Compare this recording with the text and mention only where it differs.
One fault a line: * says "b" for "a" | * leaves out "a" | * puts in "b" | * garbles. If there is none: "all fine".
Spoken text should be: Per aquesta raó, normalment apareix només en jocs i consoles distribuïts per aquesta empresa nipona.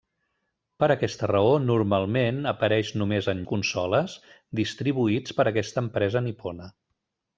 * leaves out "jocs"